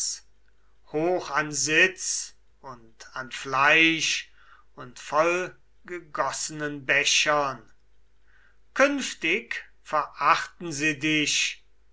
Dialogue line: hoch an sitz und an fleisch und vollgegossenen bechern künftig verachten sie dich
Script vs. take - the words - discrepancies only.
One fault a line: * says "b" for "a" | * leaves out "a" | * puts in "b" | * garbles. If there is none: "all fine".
all fine